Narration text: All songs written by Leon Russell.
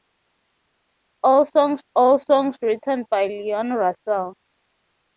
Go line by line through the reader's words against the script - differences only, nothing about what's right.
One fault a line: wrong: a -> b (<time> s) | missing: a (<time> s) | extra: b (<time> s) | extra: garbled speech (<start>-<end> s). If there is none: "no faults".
extra: all songs (1.9 s)